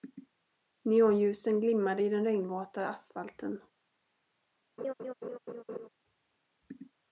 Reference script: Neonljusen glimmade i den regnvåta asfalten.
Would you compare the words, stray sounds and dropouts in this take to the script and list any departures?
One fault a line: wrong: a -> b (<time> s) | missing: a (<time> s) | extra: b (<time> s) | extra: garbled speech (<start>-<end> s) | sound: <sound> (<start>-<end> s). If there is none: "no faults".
sound: laugh (4.8-5.9 s)